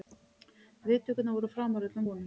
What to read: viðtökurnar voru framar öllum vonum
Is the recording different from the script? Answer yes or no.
no